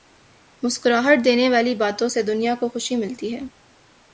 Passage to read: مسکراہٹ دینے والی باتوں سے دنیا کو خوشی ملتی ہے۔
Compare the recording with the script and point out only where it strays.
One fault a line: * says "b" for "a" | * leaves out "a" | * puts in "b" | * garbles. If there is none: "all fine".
all fine